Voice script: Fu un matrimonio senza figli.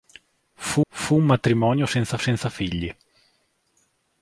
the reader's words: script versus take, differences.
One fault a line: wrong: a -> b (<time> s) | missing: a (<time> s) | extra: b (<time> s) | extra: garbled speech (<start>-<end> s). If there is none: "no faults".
extra: fu (0.9 s)
extra: senza (2.2 s)